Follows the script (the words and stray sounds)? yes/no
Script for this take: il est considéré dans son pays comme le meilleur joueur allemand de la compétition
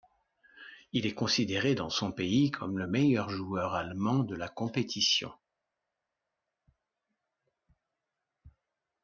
yes